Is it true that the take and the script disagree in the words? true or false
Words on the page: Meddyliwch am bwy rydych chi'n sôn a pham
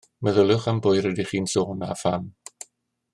false